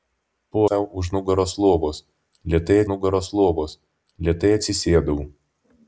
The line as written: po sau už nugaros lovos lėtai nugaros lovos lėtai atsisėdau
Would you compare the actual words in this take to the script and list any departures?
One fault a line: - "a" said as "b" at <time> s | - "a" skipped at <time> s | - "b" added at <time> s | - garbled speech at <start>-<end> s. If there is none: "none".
none